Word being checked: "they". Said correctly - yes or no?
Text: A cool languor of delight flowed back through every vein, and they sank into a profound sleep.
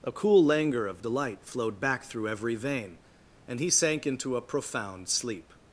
no